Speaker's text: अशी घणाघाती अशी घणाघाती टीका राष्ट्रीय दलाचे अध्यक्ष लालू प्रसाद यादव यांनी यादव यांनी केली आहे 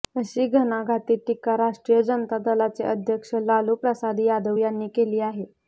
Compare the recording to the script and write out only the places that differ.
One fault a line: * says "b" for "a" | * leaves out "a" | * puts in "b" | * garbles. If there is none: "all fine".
* leaves out "अशी घणाघाती"
* puts in "जनता"
* leaves out "यादव यांनी"